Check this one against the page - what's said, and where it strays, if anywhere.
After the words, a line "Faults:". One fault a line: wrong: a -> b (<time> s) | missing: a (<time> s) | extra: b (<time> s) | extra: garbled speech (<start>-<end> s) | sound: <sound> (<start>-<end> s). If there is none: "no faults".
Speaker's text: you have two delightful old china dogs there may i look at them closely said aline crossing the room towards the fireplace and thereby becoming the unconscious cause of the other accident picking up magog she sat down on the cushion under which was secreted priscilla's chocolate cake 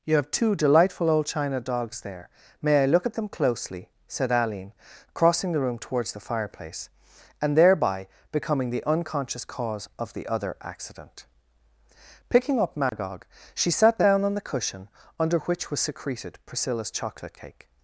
you have two delightful old china dogs there may i look at them closely said aline crossing the room towards the fireplace and thereby becoming the unconscious cause of the other accident picking up magog she sat down on the cushion under which was secreted priscilla's chocolate cake
Faults:
sound: dropout (12.9-12.9 s)